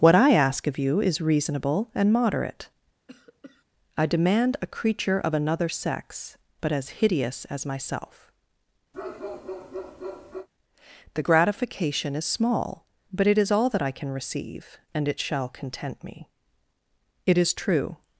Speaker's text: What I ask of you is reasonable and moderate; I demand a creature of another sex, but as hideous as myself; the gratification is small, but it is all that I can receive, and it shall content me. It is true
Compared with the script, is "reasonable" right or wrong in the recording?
right